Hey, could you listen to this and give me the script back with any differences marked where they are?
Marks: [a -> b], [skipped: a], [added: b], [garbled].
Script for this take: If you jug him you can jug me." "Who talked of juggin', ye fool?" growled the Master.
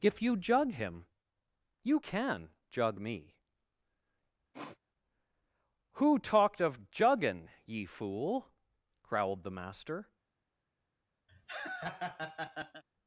If you jug him you can jug me." "Who talked of juggin', ye fool?" growled the Master.